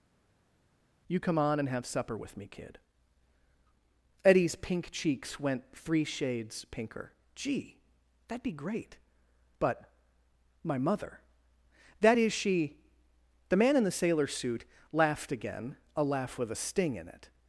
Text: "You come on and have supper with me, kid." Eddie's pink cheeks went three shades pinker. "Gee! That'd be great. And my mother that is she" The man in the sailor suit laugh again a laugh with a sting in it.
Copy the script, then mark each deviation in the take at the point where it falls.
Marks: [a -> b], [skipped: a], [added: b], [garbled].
"You come on and have supper with me, kid." Eddie's pink cheeks went three shades pinker. "Gee! That'd be great. [And -> But] my mother that is she" The man in the sailor suit [laugh -> laughed] again a laugh with a sting in it.